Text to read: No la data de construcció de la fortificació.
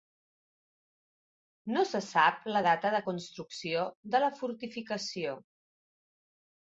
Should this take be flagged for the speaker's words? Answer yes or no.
yes